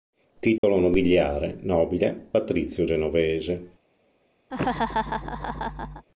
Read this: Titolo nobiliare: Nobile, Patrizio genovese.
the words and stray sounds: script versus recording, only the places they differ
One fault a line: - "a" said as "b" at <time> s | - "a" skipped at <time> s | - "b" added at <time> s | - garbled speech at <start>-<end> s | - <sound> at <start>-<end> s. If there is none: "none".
- dropout at 0.6-0.6 s
- laugh at 4.5-6.1 s